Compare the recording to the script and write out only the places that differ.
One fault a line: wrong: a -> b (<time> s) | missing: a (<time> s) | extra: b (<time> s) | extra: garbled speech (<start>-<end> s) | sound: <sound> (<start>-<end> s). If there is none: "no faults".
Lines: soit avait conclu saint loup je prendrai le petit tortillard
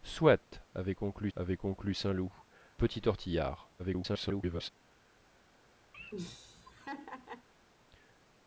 extra: avait conclu (1.3 s)
missing: je prendrai le (2.3 s)
extra: garbled speech (3.8-4.7 s)
sound: laugh (5.9-7.5 s)